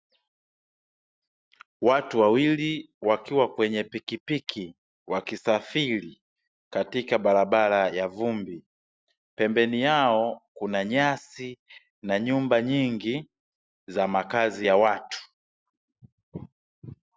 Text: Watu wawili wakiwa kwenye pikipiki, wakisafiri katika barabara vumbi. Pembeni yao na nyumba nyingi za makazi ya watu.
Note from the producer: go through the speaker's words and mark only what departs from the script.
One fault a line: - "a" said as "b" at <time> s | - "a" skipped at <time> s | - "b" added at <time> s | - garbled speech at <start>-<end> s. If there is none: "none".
- "ya" added at 7.9 s
- "kuna nyasi" added at 10.5 s